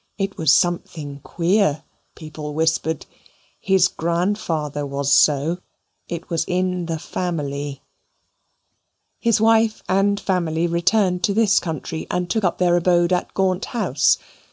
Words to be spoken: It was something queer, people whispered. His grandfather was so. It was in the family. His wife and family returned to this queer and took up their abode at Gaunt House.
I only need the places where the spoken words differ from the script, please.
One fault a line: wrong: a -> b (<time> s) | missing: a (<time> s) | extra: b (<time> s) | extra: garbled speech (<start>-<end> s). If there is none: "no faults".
wrong: queer -> country (11.6 s)